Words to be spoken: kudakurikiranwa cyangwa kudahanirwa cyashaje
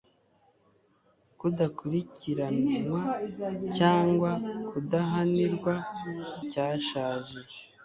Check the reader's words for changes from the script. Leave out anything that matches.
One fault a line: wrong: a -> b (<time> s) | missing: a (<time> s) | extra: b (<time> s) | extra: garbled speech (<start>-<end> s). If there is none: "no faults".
no faults